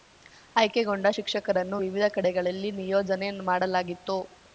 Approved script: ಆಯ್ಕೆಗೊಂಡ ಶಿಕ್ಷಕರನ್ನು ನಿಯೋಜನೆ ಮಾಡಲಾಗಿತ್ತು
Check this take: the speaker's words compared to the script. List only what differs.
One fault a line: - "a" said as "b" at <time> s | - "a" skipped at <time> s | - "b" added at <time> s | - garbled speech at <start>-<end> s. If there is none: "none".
- "ವಿವಿಧ ಕಡೆಗಳಲ್ಲಿ" added at 1.8 s